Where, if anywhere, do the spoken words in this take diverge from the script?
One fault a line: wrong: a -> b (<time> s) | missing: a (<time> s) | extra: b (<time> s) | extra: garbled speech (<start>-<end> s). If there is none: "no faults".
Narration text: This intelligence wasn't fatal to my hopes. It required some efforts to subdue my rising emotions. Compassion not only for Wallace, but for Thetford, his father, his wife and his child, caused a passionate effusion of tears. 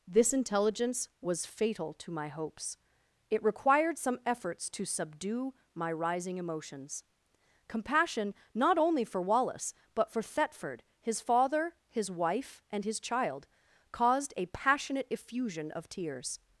wrong: wasn't -> was (1.2 s)